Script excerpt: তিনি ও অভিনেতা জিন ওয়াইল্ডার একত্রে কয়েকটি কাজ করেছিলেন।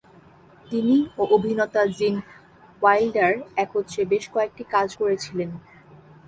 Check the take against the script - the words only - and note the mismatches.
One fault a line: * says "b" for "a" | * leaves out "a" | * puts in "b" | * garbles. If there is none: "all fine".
* puts in "বেশ"